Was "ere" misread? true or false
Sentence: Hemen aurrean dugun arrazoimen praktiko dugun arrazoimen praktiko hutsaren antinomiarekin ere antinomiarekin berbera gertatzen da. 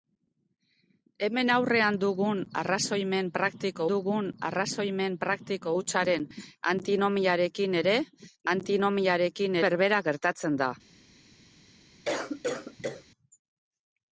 false